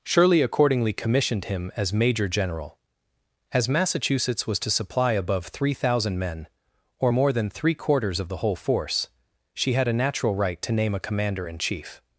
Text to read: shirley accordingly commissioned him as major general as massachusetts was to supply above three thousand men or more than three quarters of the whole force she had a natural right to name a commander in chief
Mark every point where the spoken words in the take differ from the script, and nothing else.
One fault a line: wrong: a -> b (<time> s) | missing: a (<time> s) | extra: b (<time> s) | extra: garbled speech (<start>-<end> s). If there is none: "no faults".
no faults